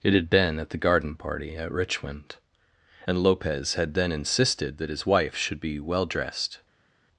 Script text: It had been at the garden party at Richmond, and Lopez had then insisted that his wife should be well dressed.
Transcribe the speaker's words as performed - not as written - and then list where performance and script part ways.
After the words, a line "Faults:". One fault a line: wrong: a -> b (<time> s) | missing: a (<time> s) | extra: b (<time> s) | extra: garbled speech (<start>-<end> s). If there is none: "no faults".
It had been at the garden party at Richmond, and Lopez had then insisted that his wife should be well dressed.
Faults:
no faults